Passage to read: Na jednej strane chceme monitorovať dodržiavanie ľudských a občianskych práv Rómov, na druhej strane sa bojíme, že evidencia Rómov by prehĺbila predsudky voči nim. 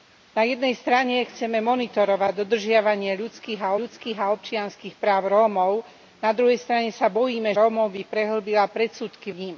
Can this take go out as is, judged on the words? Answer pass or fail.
fail